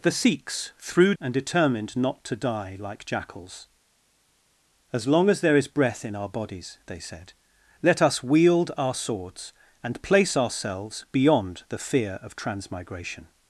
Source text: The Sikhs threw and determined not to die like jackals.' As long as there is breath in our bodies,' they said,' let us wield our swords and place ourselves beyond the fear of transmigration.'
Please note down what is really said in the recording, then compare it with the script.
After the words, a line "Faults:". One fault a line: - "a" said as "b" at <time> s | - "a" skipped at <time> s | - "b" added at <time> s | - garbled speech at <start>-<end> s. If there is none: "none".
The Sikhs threw and determined not to die like jackals.' As long as there is breath in our bodies,' they said,' let us wield our swords and place ourselves beyond the fear of transmigration.'
Faults:
none